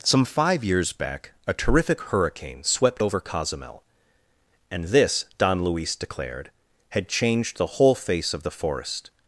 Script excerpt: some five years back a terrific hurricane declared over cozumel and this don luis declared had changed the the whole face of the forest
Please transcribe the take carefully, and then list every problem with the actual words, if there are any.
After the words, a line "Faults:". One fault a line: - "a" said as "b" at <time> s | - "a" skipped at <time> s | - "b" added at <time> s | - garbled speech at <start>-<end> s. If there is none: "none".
some five years back a terrific hurricane swept over cozumel and this don luis declared had changed the whole face of the forest
Faults:
- "declared" said as "swept" at 2.6 s
- "the" skipped at 7.8 s